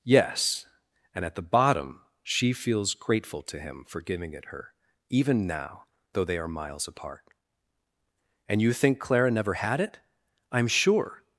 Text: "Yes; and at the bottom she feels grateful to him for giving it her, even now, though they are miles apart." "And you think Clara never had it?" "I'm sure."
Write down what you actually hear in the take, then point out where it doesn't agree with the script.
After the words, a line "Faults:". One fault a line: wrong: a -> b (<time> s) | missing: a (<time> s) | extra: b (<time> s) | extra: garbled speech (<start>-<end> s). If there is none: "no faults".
"Yes; and at the bottom she feels grateful to him for giving it her, even now, though they are miles apart." "And you think Clara never had it?" "I'm sure."
Faults:
no faults